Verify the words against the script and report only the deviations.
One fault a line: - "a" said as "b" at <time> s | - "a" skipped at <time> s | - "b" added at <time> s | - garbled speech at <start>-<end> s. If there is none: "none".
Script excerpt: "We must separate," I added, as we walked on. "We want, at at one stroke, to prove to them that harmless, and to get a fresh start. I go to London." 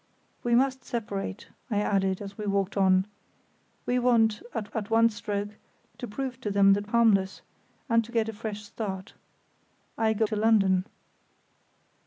none